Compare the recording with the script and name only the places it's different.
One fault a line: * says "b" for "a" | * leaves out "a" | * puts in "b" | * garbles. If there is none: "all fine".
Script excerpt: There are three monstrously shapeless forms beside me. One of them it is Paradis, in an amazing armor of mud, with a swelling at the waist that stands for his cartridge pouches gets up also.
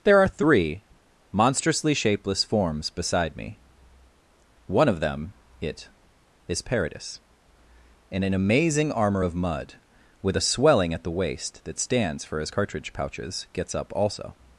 all fine